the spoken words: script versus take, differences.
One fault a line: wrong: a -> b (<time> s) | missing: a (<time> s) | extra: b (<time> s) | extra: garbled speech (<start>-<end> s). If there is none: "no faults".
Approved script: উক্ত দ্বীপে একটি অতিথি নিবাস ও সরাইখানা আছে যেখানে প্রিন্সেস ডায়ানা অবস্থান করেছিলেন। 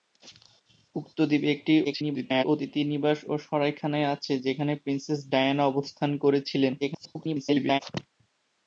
extra: garbled speech (1.8-2.4 s)
extra: garbled speech (6.8-7.8 s)